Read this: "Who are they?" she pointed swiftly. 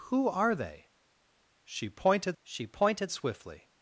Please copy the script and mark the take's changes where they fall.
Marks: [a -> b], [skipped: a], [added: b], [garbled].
"Who are they?" she pointed [added: she pointed] swiftly.